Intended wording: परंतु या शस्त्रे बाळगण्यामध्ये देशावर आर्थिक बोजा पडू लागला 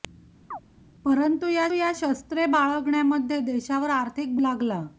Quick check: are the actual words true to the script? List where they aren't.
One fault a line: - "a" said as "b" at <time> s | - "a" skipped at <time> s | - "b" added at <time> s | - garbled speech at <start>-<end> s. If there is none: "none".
- "या" added at 1.7 s
- "बोजा पडू" skipped at 4.4 s